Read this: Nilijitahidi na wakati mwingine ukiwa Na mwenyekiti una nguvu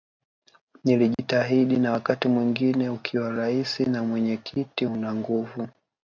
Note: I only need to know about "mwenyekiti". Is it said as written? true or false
true